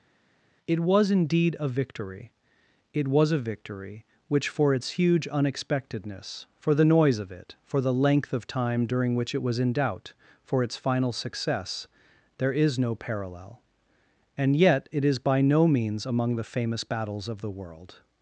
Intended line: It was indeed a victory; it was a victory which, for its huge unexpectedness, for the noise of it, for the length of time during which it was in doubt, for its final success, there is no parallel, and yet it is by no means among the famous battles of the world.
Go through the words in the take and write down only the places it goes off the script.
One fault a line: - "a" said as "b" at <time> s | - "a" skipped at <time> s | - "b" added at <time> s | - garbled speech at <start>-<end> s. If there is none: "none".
none